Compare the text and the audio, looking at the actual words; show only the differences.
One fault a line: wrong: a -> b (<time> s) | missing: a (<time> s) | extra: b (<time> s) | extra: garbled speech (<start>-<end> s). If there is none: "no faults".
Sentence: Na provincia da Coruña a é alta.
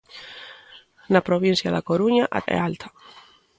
no faults